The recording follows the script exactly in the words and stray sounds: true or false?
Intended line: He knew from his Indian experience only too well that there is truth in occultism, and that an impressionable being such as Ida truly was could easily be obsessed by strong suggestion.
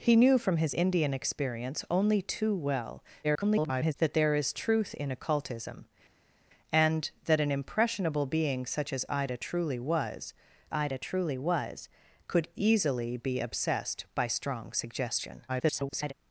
false